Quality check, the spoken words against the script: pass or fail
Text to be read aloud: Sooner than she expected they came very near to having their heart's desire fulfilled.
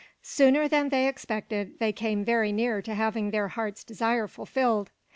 fail